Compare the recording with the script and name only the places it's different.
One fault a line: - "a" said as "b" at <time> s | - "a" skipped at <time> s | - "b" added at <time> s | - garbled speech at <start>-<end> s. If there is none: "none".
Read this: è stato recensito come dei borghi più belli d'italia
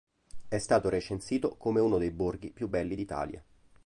- "uno" added at 1.8 s